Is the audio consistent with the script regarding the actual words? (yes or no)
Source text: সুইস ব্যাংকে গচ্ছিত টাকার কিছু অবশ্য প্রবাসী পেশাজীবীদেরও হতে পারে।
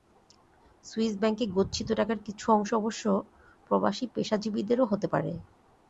no